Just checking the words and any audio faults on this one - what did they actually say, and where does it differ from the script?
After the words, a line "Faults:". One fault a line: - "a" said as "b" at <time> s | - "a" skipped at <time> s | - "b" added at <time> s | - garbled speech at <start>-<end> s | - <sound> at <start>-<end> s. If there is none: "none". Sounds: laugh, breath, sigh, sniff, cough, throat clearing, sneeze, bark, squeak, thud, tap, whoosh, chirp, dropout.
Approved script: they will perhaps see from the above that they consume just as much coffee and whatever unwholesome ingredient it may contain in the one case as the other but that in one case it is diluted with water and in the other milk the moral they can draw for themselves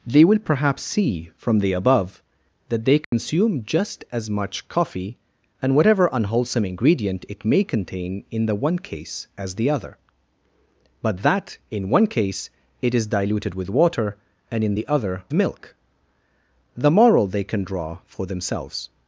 they will perhaps see from the above that they consume just as much coffee and whatever unwholesome ingredient it may contain in the one case as the other but that in one case it is diluted with water and in the other milk the moral they can draw for themselves
Faults:
- dropout at 3.0-3.1 s